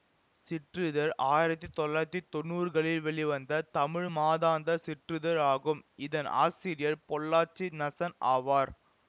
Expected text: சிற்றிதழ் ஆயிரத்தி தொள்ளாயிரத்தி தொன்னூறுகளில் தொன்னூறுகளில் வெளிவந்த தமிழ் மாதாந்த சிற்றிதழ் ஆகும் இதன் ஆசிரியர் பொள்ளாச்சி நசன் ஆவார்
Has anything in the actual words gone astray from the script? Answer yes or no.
yes